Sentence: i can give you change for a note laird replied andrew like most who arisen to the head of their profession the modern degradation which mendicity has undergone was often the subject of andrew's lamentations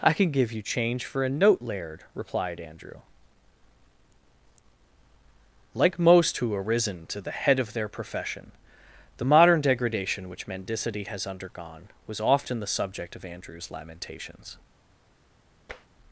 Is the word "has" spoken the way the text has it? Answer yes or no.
yes